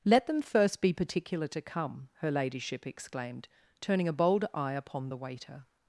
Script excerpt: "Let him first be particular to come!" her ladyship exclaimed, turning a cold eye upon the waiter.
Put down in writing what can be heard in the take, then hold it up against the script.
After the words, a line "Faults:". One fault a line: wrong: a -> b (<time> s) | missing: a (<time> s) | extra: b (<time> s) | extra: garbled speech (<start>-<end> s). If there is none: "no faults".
"Let them first be particular to come!" her ladyship exclaimed, turning a bold eye upon the waiter.
Faults:
wrong: him -> them (0.2 s)
wrong: cold -> bold (4.1 s)